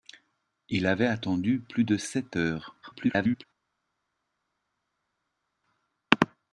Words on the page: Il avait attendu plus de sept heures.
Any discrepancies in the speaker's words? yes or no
yes